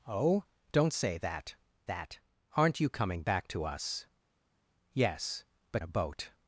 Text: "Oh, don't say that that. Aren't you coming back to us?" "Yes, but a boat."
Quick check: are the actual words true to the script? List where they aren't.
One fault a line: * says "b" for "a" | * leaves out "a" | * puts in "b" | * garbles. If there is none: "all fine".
all fine